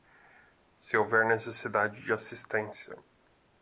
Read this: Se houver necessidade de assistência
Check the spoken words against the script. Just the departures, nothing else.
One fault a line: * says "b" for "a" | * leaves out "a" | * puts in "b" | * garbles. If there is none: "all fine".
all fine